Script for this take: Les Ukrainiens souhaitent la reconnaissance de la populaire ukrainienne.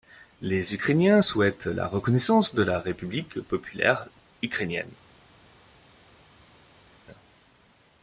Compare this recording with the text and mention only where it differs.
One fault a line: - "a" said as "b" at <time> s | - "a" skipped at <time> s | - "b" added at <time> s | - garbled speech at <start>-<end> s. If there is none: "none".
- "république" added at 2.8 s